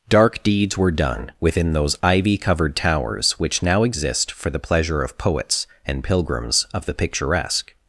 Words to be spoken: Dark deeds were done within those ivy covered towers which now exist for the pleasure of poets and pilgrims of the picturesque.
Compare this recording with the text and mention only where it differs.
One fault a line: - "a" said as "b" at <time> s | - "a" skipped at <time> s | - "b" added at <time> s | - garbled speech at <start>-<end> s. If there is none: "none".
none